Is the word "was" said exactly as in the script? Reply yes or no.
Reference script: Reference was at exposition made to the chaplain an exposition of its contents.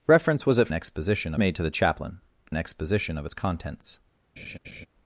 yes